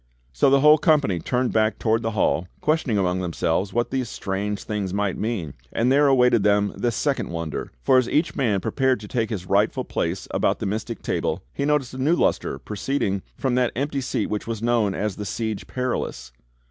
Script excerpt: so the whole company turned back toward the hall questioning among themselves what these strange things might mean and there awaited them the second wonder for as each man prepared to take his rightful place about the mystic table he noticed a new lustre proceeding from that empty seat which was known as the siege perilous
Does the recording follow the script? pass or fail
pass